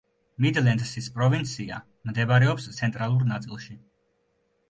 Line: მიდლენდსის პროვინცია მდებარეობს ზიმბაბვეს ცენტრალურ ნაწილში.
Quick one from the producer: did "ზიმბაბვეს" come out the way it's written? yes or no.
no